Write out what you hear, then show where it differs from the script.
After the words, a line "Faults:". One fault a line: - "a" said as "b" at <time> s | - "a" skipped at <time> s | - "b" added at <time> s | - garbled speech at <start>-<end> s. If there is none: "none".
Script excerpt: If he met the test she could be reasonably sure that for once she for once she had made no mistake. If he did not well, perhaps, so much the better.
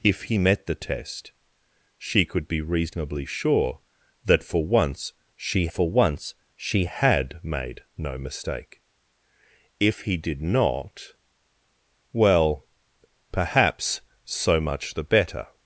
If he met the test she could be reasonably sure that for once she for once she had made no mistake. If he did not well, perhaps, so much the better.
Faults:
none